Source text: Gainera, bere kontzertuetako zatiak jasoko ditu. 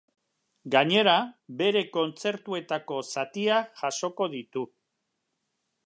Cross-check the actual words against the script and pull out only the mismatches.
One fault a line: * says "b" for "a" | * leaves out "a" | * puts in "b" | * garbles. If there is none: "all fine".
all fine